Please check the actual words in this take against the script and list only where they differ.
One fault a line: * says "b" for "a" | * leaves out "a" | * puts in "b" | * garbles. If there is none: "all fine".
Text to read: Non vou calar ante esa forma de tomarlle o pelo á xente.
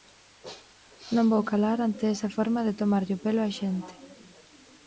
all fine